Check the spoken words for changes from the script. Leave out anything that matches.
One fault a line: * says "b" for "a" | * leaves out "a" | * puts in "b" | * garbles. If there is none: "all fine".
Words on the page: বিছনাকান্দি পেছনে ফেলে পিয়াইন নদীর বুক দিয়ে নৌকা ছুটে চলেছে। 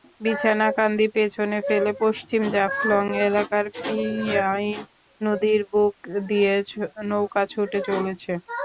* puts in "পশ্চিম জাফলং এলাকার"